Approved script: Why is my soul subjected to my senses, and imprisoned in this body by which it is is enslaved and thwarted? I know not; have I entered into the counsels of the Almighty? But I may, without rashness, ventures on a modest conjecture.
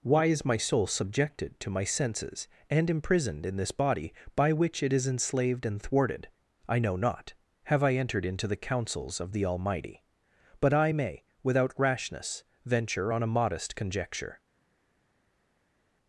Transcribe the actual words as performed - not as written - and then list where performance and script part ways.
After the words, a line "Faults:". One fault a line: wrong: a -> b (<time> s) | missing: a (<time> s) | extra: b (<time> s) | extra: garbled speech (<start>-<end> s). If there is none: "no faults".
Why is my soul subjected to my senses, and imprisoned in this body by which it is enslaved and thwarted? I know not; have I entered into the counsels of the Almighty? But I may, without rashness, venture on a modest conjecture.
Faults:
missing: is (5.0 s)
wrong: ventures -> venture (12.6 s)